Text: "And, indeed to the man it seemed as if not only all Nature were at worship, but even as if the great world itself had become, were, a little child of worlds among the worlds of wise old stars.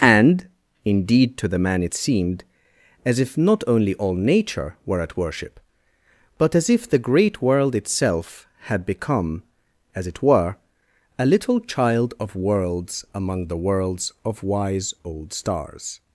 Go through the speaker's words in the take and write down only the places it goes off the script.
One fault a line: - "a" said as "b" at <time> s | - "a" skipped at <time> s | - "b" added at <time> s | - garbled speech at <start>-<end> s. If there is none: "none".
- "even" skipped at 6.5 s
- "as it" added at 9.9 s